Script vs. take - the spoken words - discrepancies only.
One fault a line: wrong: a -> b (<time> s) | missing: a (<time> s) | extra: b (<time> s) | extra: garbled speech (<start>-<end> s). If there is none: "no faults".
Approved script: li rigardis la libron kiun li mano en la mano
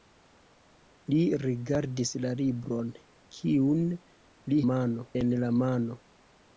no faults